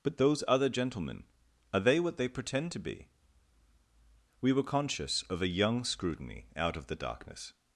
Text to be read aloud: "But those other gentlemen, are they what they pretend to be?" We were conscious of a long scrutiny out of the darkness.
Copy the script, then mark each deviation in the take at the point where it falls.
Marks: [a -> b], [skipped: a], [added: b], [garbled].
"But those other gentlemen, are they what they pretend to be?" We were conscious of a [long -> young] scrutiny out of the darkness.